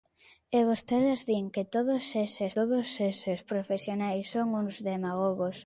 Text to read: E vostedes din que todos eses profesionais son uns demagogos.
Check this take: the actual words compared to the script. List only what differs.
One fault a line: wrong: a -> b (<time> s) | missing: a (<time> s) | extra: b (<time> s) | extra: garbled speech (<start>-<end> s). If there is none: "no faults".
extra: todos eses (2.6 s)